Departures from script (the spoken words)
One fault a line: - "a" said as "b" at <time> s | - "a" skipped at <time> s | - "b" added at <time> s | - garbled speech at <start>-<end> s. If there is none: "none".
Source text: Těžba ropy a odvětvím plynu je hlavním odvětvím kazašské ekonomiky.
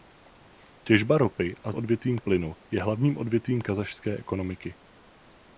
none